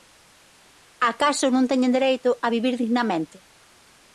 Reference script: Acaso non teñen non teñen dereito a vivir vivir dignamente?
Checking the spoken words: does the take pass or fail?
fail